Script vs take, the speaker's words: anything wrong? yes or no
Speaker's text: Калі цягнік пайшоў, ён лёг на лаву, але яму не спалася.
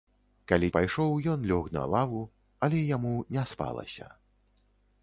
yes